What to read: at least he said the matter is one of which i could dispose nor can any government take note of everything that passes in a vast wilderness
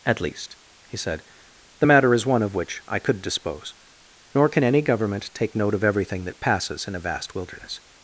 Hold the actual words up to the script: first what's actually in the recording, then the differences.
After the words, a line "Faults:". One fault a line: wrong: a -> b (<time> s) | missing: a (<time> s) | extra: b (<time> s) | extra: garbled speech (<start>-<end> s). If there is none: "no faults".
at least he said the matter is one of which i could dispose nor can any government take note of everything that passes in a vast wilderness
Faults:
no faults